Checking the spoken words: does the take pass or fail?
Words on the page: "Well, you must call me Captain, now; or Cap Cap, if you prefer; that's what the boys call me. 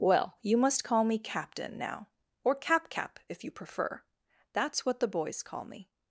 pass